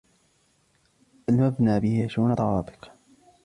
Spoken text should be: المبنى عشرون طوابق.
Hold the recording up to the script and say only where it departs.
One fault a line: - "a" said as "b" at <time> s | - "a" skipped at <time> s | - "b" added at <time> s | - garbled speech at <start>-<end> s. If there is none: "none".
- "به" added at 1.8 s